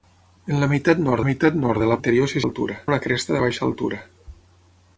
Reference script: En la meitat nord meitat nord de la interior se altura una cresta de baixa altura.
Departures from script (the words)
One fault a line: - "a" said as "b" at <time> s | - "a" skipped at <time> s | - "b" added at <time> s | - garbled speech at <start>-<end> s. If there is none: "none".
none